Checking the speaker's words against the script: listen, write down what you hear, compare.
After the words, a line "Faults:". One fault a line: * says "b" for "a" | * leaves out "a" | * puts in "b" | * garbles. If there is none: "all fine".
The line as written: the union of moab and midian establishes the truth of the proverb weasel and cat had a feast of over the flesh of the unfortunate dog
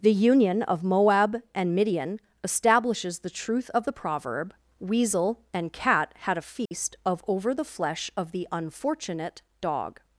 the union of moab and midian establishes the truth of the proverb weasel and cat had a feast of over the flesh of the unfortunate dog
Faults:
all fine